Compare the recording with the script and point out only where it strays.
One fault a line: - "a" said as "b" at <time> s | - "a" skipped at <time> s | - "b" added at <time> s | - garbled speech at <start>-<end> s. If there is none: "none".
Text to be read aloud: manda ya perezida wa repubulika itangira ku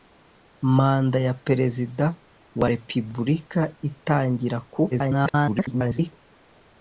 - garbled speech at 4.9-6.1 s